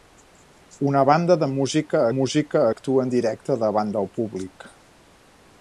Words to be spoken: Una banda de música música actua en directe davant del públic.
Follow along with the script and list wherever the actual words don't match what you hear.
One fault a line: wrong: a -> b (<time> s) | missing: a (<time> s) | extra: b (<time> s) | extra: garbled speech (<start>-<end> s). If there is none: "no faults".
no faults